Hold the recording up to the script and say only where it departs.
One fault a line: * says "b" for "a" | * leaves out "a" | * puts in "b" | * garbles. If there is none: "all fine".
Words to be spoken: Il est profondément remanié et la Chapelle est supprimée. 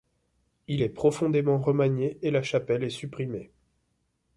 all fine